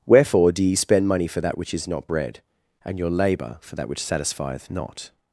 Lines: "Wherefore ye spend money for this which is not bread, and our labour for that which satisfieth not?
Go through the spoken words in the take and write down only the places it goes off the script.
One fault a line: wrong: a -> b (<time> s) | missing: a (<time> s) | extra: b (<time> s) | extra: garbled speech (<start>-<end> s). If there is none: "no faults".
extra: do (0.5 s)
wrong: this -> that (1.4 s)
wrong: our -> your (3.0 s)